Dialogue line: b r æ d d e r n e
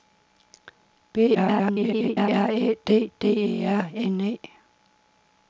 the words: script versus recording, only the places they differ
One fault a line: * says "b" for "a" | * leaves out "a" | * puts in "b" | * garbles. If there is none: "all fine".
* garbles